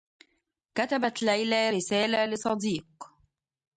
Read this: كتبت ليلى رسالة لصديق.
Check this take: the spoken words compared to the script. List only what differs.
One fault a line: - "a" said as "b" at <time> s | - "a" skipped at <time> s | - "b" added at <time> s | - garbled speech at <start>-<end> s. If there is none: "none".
none